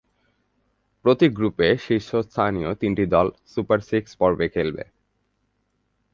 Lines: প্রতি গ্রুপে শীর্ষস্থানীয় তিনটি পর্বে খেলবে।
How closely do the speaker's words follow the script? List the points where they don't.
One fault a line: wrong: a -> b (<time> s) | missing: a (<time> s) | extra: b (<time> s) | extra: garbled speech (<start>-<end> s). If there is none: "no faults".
extra: দল সুপার সিক্স (3.0 s)